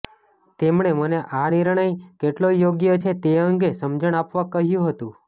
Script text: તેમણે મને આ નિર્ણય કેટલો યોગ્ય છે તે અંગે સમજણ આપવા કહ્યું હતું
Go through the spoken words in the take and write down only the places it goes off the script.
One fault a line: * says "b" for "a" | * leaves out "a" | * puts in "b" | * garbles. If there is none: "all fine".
all fine